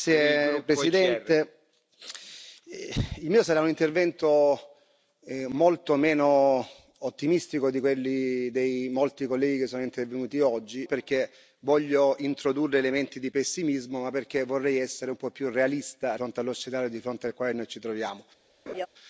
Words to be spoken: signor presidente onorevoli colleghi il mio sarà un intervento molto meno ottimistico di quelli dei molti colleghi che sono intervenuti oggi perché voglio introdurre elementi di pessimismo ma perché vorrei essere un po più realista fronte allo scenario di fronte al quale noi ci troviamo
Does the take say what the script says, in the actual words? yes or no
yes